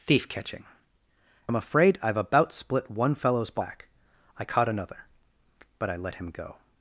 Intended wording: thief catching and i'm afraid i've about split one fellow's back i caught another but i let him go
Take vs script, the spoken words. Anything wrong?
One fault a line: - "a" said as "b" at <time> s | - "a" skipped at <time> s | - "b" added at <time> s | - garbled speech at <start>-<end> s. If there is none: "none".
- "and" skipped at 0.7 s